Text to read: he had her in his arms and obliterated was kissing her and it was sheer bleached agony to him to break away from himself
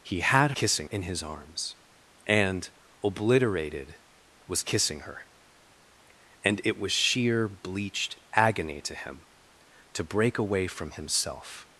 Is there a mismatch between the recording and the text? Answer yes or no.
yes